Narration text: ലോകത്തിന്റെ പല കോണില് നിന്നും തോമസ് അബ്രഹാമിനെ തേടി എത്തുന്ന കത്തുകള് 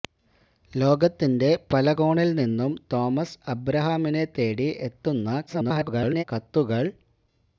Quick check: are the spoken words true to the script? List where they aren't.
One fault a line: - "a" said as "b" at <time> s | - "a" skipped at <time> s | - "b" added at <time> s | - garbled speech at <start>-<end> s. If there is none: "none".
- garbled speech at 5.5-6.2 s